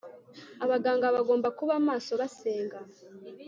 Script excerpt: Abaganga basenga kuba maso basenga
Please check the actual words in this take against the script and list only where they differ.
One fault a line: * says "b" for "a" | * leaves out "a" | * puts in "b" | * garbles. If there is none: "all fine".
* says "bagomba" for "basenga"